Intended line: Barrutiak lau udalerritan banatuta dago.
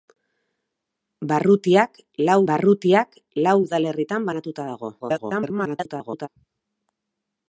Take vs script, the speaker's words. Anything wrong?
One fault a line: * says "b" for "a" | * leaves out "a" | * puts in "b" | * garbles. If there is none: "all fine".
* puts in "barrutiak lau"
* garbles